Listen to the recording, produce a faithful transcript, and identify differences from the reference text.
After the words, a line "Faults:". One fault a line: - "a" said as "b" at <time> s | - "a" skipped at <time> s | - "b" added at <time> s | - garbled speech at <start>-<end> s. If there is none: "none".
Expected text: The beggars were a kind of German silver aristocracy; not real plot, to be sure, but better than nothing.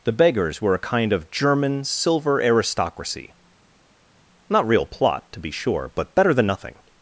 The beggars were a kind of German silver aristocracy; not real plot, to be sure, but better than nothing.
Faults:
none